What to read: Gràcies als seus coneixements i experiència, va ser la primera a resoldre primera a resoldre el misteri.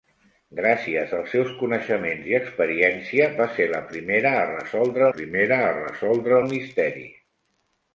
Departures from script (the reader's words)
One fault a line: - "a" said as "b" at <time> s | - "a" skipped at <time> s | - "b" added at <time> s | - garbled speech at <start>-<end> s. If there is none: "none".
none